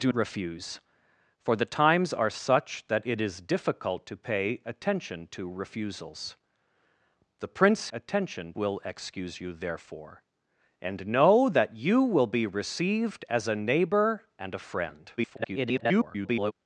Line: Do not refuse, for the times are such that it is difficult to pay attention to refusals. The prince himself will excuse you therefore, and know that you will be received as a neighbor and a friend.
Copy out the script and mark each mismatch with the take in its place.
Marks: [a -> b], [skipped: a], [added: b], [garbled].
Do [skipped: not] refuse, for the times are such that it is difficult to pay attention to refusals. The prince [himself -> attention] will excuse you therefore, and know that you will be received as a neighbor and a friend. [garbled]